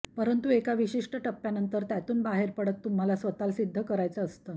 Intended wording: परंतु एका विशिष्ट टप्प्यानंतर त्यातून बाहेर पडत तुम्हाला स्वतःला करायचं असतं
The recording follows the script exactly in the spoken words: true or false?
false